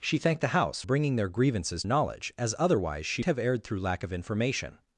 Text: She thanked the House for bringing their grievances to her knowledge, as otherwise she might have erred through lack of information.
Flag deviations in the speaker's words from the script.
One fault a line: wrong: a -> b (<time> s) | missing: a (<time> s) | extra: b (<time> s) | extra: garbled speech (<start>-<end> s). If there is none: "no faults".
missing: for (0.8 s)
missing: to her (1.8 s)
missing: might (3.2 s)